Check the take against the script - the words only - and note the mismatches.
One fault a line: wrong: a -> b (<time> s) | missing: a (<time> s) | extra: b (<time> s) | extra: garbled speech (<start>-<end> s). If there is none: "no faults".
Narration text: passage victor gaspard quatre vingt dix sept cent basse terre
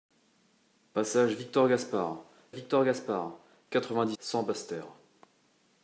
extra: victor gaspard (2.5 s)
missing: sept (4.2 s)